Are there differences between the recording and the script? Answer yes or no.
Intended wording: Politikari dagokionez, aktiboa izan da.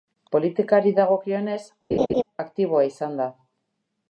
no